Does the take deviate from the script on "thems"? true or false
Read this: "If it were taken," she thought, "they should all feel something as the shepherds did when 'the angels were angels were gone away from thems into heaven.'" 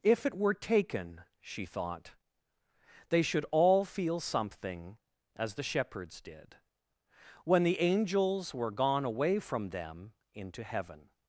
true